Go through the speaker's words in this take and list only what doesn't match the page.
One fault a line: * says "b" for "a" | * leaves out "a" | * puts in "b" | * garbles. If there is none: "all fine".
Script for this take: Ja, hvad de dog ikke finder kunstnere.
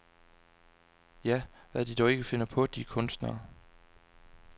* puts in "på de"